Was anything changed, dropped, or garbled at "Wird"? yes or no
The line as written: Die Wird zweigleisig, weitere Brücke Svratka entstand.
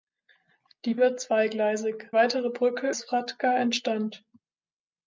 no